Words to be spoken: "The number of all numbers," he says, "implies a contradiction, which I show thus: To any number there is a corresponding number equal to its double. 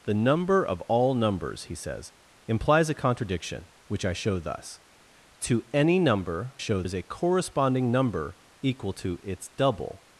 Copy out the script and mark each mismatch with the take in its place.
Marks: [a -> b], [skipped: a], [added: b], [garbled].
"The number of all numbers," he says, "implies a contradiction, which I show thus: To any number [there -> show] is a corresponding number equal to its double.